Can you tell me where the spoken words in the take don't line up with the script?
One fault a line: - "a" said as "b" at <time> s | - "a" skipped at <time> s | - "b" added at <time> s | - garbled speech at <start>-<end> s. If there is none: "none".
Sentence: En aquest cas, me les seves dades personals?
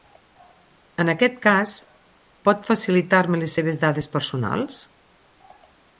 - "pot facilitar" added at 2.5 s